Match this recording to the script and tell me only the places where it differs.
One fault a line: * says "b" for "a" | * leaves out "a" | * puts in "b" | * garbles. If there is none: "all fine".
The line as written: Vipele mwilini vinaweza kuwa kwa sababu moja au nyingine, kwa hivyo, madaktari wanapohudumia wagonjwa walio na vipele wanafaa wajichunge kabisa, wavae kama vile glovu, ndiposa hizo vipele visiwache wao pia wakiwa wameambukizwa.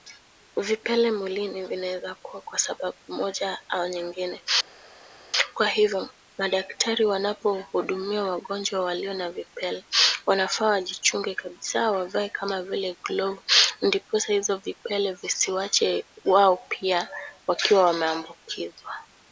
all fine